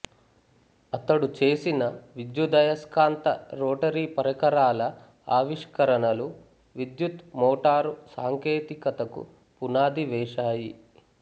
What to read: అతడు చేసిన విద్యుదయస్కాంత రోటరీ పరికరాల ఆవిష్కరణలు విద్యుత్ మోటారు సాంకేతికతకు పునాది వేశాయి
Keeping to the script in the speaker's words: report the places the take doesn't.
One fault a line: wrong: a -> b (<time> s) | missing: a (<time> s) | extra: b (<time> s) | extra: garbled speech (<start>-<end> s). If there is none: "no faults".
no faults